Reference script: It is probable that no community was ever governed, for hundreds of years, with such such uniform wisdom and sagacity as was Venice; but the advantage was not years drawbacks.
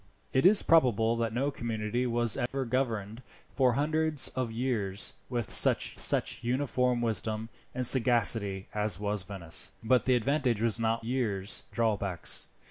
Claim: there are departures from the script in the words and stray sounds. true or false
true